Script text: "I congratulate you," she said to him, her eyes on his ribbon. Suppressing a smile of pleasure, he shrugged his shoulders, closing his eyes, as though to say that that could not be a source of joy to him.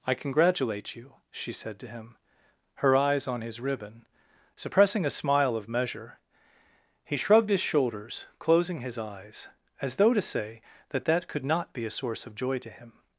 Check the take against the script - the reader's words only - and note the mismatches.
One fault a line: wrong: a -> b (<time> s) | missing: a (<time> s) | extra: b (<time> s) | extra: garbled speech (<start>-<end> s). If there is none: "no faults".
wrong: pleasure -> measure (5.7 s)